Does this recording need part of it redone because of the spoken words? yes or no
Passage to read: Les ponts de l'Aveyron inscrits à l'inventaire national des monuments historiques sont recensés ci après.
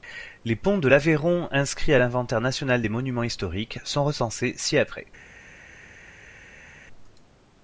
no